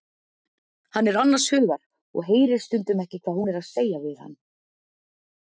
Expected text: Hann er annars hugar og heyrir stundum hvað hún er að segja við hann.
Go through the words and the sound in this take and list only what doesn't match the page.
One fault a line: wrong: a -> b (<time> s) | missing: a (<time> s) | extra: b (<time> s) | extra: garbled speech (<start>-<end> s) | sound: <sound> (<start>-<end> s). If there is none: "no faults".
extra: ekki (3.0 s)